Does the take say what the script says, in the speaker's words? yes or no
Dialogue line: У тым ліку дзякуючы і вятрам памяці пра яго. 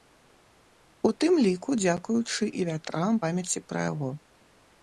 yes